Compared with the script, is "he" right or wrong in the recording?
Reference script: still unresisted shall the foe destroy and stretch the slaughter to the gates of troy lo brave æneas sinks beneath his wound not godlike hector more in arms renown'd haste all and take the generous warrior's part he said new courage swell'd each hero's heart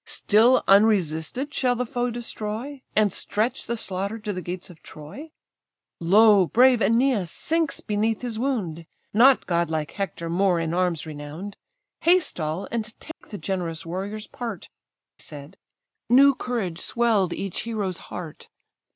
wrong